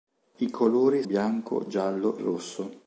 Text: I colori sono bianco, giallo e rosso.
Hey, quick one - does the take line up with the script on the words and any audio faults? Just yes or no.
no